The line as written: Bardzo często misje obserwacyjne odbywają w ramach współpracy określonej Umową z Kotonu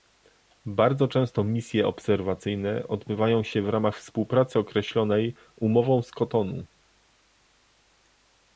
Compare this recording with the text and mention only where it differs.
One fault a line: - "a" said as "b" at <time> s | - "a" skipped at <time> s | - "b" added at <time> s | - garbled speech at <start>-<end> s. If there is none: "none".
- "się" added at 3.4 s